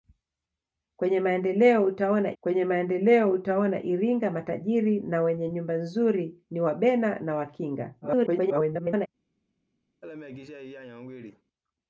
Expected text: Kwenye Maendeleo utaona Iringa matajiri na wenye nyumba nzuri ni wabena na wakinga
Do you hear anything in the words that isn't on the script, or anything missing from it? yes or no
yes